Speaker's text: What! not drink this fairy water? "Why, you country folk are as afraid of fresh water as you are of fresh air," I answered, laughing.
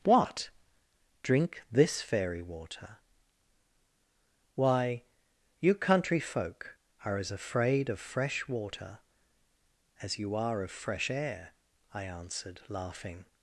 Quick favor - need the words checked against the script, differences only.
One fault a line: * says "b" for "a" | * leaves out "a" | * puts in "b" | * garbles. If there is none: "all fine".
* leaves out "not"